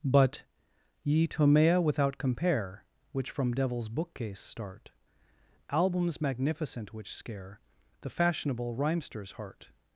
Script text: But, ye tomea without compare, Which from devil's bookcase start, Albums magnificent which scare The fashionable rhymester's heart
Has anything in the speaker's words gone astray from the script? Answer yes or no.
no